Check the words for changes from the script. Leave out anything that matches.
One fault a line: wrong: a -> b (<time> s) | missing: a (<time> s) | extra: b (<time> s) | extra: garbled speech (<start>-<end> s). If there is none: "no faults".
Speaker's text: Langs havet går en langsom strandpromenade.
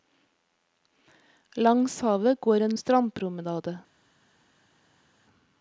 missing: langsom (2.8 s)